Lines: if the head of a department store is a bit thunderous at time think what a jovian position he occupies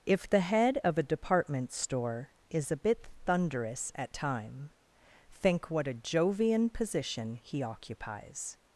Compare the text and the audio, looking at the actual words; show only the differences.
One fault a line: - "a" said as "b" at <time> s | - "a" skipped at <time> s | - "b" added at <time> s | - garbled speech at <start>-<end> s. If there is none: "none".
none